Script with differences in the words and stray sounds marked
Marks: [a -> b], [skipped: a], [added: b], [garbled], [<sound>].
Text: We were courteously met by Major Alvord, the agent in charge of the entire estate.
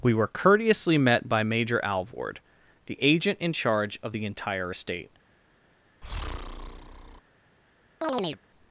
We were courteously met by Major Alvord, the agent in charge of the entire estate. [breath] [chirp]